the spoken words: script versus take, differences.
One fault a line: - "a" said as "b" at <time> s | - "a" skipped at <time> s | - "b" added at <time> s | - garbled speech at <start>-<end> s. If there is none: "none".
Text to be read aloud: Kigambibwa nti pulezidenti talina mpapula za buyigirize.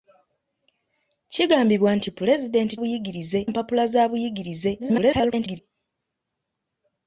- "talina" said as "buyigirize" at 2.8 s
- garbled speech at 4.8-5.6 s